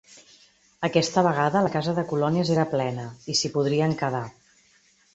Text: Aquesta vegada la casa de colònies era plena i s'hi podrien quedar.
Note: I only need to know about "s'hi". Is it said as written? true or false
true